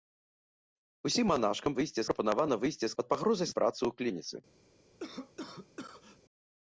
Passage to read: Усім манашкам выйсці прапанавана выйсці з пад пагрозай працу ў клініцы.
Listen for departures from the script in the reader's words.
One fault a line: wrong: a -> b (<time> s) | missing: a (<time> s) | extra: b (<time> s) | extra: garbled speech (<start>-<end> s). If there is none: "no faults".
no faults